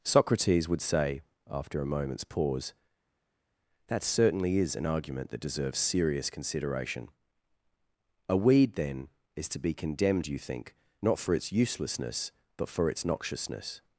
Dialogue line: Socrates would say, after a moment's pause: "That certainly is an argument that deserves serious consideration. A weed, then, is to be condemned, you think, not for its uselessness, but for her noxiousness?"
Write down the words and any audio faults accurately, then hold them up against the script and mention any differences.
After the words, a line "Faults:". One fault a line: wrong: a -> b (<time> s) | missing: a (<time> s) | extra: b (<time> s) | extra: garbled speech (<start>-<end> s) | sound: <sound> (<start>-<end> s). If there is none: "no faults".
Socrates would say, after a moment's pause: "That certainly is an argument that deserves serious consideration. A weed, then, is to be condemned, you think, not for its uselessness, but for its noxiousness?"
Faults:
wrong: her -> its (12.9 s)